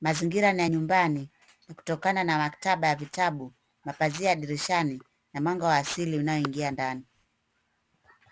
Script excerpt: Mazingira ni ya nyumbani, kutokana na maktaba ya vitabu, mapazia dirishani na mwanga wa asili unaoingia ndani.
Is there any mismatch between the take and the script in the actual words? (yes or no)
no